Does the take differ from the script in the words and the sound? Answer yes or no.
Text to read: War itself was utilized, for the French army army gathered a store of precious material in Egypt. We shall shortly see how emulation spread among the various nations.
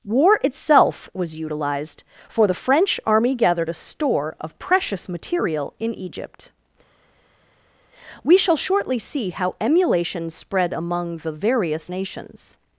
yes